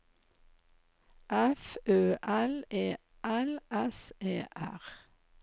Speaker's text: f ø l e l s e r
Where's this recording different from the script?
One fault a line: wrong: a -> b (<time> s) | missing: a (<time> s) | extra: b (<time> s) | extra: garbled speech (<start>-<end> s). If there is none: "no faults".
no faults